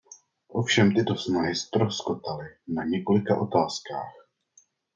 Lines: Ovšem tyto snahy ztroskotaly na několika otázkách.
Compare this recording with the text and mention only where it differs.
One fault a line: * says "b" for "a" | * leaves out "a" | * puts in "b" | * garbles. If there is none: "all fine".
all fine